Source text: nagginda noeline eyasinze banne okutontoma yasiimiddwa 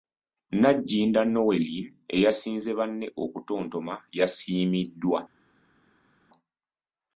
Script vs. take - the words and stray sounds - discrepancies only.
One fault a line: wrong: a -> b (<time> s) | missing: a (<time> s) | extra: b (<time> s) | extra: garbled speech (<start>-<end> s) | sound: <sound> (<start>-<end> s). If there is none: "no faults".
no faults